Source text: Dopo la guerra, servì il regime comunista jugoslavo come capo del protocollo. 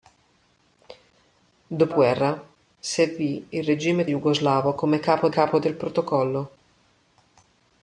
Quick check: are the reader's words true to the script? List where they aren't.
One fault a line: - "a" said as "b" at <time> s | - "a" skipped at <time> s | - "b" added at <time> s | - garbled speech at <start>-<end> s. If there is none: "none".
- "la" skipped at 1.9 s
- "comunista" skipped at 4.0 s
- "capo" added at 5.3 s